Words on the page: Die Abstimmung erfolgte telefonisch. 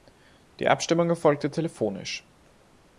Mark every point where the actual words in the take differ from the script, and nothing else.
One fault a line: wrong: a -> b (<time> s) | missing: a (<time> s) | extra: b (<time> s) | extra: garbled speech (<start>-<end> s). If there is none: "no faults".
no faults